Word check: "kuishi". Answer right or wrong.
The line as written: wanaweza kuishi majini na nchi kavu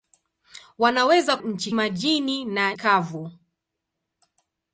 wrong